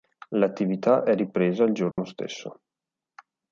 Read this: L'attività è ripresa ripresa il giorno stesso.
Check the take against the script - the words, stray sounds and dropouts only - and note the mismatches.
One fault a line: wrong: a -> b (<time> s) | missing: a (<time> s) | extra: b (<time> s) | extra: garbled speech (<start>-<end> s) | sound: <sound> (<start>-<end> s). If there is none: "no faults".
missing: ripresa (1.6 s)
sound: dropout (1.9-2.0 s)